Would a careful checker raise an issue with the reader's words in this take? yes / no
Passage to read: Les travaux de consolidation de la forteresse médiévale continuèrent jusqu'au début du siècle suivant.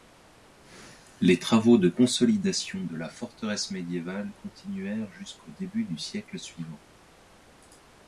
no